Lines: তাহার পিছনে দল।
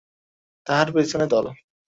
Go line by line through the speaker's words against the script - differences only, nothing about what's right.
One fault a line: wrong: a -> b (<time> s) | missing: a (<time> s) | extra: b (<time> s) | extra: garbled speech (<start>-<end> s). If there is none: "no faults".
no faults